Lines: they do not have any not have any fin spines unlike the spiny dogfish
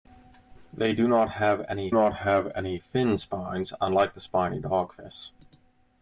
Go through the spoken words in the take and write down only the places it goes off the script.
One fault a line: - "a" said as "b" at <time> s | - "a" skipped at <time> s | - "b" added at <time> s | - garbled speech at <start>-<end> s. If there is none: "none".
none